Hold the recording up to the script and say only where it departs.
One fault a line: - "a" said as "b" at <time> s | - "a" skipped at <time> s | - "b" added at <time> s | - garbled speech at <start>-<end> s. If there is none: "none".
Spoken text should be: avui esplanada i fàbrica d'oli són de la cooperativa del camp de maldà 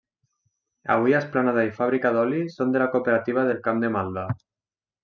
none